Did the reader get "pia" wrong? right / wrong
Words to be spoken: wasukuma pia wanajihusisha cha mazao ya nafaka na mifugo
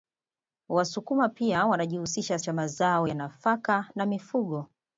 right